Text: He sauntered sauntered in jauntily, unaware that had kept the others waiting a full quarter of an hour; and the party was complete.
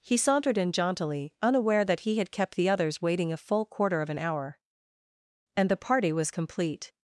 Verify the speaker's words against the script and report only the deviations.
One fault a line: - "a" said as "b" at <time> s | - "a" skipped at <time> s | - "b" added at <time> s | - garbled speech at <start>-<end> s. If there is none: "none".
- "sauntered" skipped at 0.6 s
- "he" added at 2.0 s